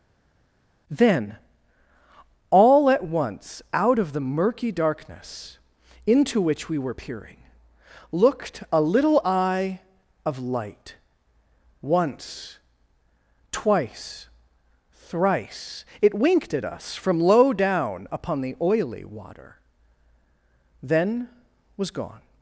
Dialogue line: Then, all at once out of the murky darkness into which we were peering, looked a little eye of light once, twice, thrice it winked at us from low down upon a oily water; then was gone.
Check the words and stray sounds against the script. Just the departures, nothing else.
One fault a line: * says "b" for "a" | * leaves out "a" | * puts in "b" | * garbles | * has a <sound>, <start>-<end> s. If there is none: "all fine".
* says "the" for "a"